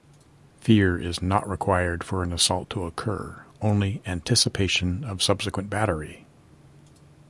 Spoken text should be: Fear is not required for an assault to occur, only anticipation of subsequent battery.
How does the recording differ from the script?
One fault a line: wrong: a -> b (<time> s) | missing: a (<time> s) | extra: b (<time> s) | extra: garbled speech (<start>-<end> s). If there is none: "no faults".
no faults